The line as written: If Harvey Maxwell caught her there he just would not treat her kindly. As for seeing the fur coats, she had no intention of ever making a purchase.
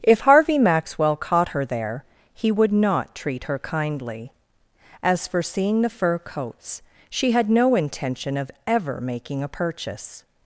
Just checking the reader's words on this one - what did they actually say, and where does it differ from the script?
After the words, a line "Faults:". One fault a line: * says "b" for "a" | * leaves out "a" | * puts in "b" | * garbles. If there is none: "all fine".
If Harvey Maxwell caught her there he would not treat her kindly. As for seeing the fur coats, she had no intention of ever making a purchase.
Faults:
* leaves out "just"